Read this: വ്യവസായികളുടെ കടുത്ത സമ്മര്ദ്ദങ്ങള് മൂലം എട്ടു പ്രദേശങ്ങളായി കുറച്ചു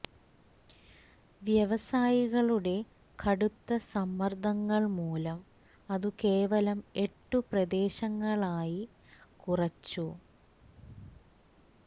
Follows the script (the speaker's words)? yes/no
no